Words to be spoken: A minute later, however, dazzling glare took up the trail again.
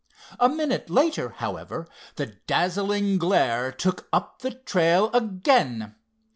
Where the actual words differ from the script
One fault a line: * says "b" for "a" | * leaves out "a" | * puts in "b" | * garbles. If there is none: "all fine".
* puts in "the"